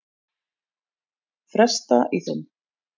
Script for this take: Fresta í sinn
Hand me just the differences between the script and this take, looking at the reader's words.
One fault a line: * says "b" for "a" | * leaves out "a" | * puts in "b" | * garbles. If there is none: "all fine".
all fine